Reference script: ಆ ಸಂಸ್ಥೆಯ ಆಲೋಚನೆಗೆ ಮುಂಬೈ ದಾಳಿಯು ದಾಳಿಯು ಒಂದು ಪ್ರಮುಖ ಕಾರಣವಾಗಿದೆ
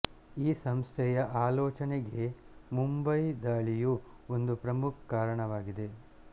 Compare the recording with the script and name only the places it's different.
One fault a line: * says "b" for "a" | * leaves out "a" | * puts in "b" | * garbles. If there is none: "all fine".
* says "ಈ" for "ಆ"
* leaves out "ದಾಳಿಯು"